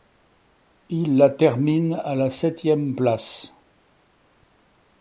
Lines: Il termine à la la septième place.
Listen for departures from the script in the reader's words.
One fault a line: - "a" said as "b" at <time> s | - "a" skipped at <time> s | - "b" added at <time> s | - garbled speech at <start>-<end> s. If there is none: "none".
- "la" added at 1.1 s
- "la" skipped at 2.3 s